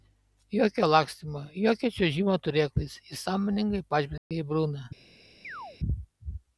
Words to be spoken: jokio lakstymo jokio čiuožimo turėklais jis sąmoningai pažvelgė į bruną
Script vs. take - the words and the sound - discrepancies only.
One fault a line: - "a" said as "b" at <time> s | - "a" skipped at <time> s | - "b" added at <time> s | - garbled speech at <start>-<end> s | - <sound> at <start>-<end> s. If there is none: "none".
- dropout at 4.2-4.3 s
- chirp at 5.4-5.8 s